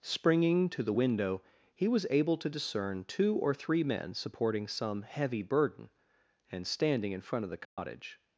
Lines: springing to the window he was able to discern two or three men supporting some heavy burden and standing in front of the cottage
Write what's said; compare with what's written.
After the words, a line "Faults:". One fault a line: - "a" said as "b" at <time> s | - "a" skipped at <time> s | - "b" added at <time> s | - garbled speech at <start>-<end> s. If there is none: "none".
springing to the window he was able to discern two or three men supporting some heavy burden and standing in front of the cottage
Faults:
none